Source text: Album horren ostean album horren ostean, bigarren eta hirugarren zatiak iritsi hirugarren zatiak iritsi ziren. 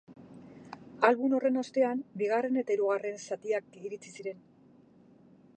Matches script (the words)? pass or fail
fail